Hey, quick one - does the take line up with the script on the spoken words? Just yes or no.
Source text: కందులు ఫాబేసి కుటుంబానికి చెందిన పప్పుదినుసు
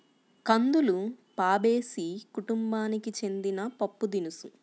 yes